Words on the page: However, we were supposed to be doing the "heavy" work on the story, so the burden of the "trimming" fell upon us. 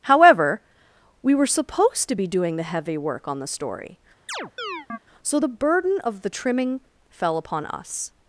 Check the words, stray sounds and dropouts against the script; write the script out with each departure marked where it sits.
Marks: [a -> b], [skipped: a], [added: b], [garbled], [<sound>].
However, we were supposed to be doing the "heavy" work on the story, [chirp] so the burden of the "trimming" fell upon us.